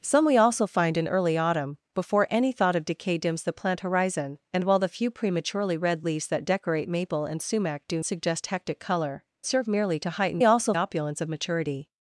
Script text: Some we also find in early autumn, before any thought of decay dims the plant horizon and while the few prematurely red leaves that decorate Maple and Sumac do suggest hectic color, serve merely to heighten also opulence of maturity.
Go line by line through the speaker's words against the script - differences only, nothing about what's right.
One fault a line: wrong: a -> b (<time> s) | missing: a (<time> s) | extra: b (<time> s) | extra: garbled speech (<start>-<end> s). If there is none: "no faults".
no faults